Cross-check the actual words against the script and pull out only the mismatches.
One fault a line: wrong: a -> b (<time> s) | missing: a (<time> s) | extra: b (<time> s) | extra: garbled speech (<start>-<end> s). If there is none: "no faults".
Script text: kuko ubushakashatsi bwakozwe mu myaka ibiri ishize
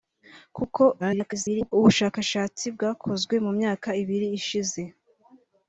extra: garbled speech (1.0-1.7 s)